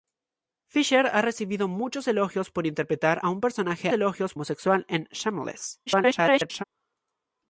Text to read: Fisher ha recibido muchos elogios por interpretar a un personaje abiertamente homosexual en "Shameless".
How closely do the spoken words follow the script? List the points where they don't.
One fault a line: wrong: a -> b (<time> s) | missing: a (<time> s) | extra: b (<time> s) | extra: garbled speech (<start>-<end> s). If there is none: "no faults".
wrong: abiertamente -> elogios (3.9 s)
extra: garbled speech (5.9-6.6 s)